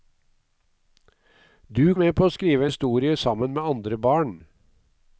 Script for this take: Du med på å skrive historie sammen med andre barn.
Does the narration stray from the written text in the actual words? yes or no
no